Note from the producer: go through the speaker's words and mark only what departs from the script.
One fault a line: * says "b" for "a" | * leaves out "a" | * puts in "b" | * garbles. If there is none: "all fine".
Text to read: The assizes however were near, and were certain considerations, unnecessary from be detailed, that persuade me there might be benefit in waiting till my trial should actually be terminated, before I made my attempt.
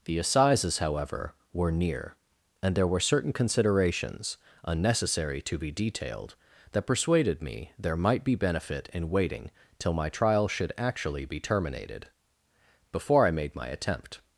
* puts in "there"
* says "to" for "from"
* says "persuaded" for "persuade"